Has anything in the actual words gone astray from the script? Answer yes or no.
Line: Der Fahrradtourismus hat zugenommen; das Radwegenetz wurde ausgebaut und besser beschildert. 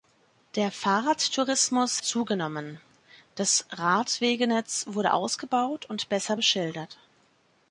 yes